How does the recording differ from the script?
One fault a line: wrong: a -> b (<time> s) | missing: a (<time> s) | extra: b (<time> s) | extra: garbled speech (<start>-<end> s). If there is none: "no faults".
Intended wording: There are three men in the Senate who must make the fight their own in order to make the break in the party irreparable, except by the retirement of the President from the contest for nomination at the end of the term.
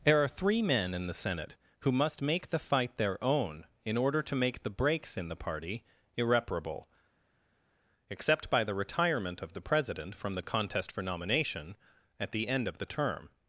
wrong: break -> breaks (4.7 s)